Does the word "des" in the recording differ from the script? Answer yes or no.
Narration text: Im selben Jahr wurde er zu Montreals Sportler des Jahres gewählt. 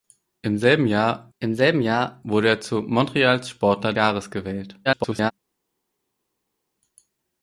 yes